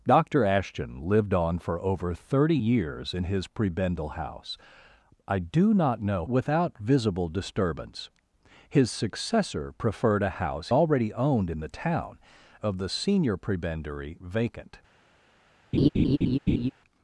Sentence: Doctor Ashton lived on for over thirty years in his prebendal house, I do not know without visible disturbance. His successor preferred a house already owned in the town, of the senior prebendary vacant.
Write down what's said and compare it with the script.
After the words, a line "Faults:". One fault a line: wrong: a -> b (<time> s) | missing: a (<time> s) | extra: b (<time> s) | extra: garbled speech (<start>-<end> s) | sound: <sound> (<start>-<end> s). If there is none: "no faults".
Doctor Ashton lived on for over thirty years in his prebendal house, I do not know without visible disturbance. His successor preferred a house already owned in the town, of the senior prebendary vacant.
Faults:
sound: laugh (15.7-16.7 s)